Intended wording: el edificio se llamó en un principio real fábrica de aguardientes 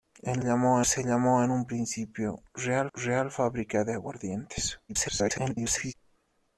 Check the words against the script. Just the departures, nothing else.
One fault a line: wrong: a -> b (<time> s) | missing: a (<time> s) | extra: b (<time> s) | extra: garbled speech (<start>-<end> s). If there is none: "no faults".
wrong: edificio -> llamó (0.4 s)
extra: real (2.9 s)
extra: garbled speech (4.9-5.9 s)